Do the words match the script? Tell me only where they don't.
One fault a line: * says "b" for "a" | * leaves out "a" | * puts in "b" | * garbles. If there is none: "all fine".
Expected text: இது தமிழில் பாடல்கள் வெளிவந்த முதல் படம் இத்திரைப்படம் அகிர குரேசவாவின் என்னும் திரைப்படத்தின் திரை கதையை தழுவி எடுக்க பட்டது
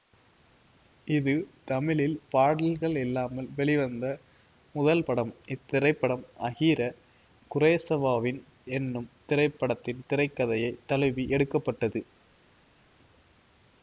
* puts in "இல்லாமல்"